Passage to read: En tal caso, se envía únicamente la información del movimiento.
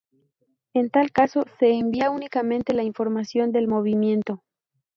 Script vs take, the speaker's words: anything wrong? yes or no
no